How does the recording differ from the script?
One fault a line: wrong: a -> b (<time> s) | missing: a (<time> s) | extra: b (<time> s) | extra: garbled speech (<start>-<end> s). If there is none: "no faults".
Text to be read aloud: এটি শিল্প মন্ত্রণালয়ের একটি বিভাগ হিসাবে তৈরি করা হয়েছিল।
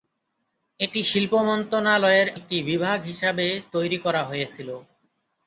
no faults